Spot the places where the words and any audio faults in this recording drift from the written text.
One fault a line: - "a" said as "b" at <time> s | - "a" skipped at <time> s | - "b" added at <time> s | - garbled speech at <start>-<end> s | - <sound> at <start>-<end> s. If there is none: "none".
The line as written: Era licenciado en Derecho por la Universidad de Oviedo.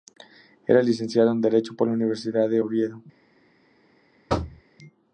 - thud at 4.3-4.6 s